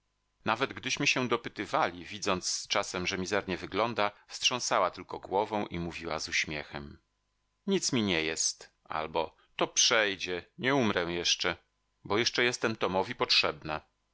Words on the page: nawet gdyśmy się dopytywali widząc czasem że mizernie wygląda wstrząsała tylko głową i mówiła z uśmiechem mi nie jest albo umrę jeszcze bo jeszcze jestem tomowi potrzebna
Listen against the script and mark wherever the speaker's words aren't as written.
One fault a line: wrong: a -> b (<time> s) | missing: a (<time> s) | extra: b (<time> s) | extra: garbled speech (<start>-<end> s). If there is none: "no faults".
extra: nic (7.7 s)
extra: to przejdzie nie (9.6 s)